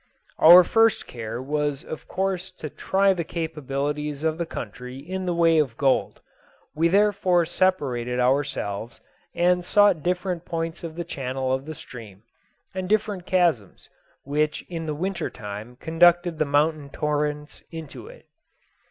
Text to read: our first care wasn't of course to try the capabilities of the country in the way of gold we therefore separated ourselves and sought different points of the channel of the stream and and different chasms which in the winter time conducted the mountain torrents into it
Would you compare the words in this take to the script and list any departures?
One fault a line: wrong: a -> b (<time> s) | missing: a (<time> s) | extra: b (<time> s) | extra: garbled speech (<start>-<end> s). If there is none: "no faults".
wrong: wasn't -> was (1.4 s)
missing: and (12.9 s)